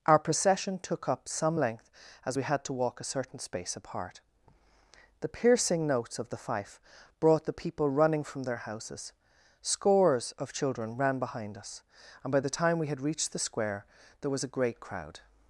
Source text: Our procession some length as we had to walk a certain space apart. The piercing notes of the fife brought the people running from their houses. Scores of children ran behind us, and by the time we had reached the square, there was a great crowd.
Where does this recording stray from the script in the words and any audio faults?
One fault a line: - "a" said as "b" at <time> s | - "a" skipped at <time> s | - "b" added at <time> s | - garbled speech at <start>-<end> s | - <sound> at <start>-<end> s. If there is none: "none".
- "took up" added at 0.8 s